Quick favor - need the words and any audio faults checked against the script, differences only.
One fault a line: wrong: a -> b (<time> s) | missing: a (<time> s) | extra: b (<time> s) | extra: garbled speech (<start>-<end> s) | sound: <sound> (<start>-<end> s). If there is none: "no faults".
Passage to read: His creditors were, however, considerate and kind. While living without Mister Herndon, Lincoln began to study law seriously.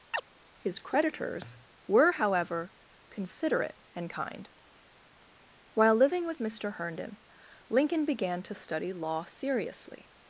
sound: chirp (0.1-0.2 s)
wrong: without -> with (6.3 s)